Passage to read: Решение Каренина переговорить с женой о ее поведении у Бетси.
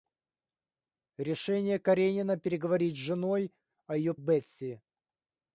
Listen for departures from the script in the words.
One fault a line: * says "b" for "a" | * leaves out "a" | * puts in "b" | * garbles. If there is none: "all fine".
* leaves out "поведении у"